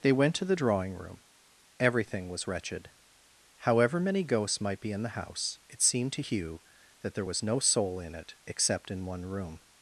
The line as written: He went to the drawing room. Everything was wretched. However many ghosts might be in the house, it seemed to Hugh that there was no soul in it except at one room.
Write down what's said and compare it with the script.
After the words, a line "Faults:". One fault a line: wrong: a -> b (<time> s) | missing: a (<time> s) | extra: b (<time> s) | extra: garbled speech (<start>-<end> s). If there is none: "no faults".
They went to the drawing room. Everything was wretched. However many ghosts might be in the house, it seemed to Hugh that there was no soul in it except in one room.
Faults:
wrong: He -> They (0.0 s)
wrong: at -> in (8.9 s)